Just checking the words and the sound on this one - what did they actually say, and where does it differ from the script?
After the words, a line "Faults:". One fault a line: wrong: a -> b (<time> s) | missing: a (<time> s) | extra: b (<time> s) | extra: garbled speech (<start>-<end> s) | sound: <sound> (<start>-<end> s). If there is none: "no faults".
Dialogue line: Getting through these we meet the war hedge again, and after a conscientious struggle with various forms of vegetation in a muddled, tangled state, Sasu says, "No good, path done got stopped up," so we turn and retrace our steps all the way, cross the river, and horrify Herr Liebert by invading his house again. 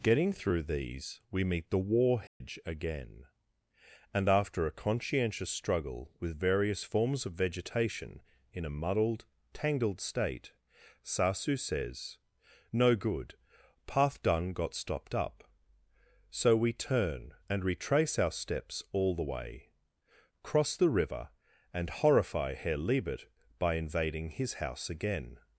Getting through these we meet the war hedge again, and after a conscientious struggle with various forms of vegetation in a muddled, tangled state, Sasu says, "No good, path done got stopped up," so we turn and retrace our steps all the way, cross the river, and horrify Herr Liebert by invading his house again.
Faults:
sound: dropout (2.3-2.4 s)